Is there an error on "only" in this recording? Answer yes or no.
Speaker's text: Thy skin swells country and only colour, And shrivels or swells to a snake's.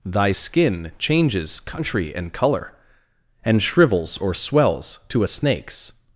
yes